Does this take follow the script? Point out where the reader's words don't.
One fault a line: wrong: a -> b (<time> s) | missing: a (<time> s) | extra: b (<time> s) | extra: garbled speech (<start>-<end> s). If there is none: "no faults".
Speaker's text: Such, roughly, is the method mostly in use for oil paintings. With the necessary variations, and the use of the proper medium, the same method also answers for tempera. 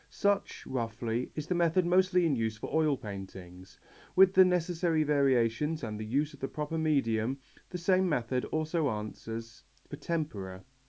no faults